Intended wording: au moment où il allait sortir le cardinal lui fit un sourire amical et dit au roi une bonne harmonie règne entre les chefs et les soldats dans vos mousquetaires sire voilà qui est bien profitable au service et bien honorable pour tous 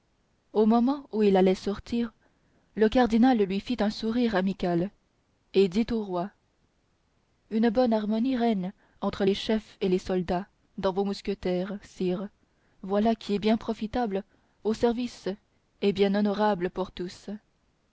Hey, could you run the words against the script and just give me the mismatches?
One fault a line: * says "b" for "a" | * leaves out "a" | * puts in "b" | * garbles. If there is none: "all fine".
all fine